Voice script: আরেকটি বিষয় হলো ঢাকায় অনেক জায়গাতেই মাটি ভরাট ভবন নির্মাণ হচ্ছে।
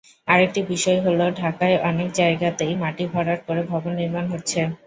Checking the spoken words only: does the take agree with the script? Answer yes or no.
no